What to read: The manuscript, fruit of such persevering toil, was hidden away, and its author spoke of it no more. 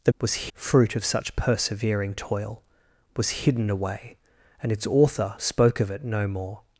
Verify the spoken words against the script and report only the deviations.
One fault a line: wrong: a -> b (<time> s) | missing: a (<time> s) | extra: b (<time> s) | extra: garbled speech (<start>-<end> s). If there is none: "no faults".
wrong: manuscript -> was (0.2 s)